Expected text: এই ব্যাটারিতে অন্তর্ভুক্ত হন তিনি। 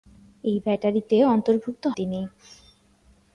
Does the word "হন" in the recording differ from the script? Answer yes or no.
yes